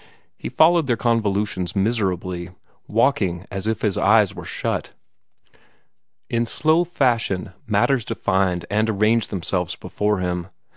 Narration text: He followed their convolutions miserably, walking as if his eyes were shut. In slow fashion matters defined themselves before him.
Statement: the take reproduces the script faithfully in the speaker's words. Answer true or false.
false